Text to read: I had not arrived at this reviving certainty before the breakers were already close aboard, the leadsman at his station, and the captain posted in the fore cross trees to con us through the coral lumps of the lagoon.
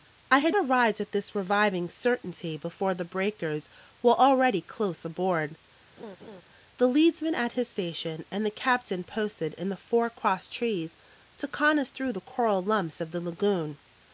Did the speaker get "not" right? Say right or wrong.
wrong